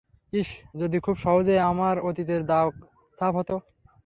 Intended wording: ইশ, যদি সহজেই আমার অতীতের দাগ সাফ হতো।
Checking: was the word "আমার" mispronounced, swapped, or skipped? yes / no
no